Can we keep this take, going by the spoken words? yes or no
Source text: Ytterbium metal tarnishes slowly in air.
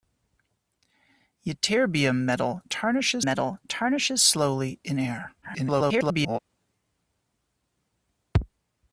no